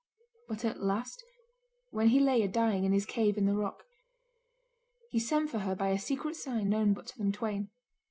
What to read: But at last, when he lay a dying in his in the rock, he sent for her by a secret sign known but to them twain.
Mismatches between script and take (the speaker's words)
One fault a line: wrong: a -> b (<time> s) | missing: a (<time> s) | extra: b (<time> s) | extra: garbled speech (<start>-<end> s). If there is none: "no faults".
extra: cave (3.0 s)